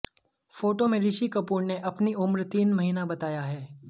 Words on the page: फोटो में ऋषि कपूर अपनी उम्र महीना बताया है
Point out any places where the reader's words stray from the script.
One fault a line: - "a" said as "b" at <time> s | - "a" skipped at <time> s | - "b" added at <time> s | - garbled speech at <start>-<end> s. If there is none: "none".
- "ने" added at 1.6 s
- "तीन" added at 2.5 s